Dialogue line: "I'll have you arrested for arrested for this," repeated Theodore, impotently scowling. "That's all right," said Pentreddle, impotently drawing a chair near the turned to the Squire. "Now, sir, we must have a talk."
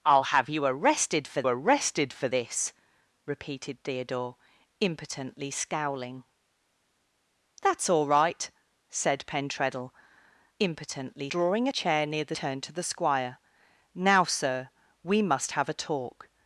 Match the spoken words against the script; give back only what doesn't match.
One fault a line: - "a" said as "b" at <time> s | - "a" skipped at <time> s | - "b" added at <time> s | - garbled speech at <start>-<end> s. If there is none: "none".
none